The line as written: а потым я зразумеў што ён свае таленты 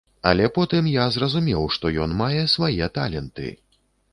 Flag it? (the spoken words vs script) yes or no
yes